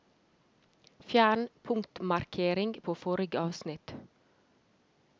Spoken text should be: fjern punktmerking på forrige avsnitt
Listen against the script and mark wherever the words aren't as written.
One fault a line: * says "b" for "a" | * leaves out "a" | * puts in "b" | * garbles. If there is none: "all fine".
all fine